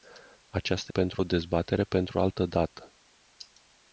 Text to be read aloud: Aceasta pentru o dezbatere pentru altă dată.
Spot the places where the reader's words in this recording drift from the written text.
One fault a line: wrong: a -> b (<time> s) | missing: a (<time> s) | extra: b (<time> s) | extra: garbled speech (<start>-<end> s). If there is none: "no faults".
no faults